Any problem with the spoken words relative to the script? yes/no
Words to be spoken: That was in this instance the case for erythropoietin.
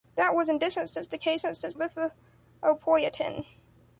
yes